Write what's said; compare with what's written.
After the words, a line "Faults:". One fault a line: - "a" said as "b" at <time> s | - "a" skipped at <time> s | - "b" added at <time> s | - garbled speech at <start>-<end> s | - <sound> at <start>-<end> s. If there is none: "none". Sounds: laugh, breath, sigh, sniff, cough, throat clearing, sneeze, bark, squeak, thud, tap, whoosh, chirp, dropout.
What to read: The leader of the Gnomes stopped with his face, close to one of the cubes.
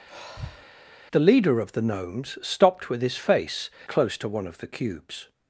The leader of the Gnomes stopped with his face, close to one of the cubes.
Faults:
- sigh at 0.1-0.7 s